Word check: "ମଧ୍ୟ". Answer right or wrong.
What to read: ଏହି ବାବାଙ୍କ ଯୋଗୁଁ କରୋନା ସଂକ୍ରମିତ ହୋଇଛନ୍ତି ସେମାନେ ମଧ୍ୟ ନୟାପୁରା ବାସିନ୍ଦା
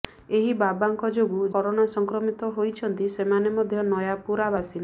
right